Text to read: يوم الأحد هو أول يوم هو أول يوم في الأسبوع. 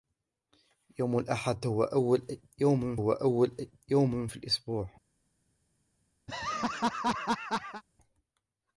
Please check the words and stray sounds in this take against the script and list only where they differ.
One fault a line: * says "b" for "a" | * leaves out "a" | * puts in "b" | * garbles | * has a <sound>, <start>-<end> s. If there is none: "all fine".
* has a laugh, 6.3-7.8 s